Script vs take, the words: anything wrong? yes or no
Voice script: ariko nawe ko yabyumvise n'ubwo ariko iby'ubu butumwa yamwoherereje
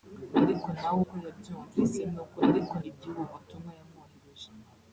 no